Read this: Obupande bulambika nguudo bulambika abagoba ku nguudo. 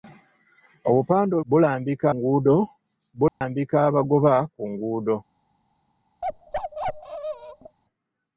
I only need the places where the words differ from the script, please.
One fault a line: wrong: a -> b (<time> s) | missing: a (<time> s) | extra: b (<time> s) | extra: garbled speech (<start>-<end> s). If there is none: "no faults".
no faults